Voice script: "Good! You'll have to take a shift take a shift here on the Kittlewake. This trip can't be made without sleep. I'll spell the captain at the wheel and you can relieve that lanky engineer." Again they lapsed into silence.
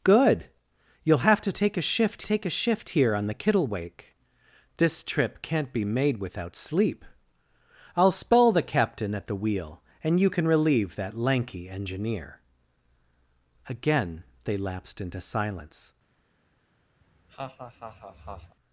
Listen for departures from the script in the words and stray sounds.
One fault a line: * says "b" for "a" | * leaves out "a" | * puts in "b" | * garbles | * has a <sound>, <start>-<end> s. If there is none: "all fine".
* has a laugh, 17.0-18.6 s